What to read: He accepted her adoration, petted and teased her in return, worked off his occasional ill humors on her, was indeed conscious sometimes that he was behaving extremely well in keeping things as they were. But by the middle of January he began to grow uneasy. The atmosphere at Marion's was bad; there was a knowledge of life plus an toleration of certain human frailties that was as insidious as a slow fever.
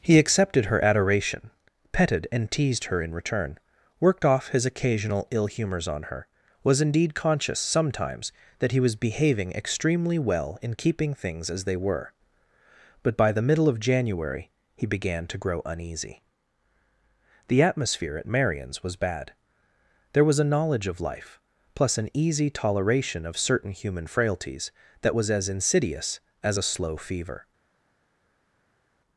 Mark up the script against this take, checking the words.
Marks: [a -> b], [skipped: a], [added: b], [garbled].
He accepted her adoration, petted and teased her in return, worked off his occasional ill humors on her, was indeed conscious sometimes that he was behaving extremely well in keeping things as they were. But by the middle of January he began to grow uneasy. The atmosphere at Marion's was bad; there was a knowledge of life plus an [added: easy] toleration of certain human frailties that was as insidious as a slow fever.